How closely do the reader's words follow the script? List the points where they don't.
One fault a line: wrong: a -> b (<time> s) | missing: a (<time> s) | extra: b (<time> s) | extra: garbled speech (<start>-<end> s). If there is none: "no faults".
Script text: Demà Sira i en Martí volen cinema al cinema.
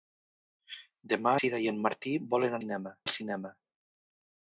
no faults